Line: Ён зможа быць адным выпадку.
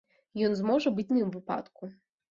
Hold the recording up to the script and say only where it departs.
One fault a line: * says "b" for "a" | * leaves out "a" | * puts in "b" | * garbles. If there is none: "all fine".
all fine